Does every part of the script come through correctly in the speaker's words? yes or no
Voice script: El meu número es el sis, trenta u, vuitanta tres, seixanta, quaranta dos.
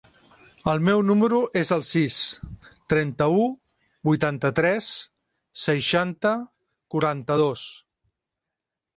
yes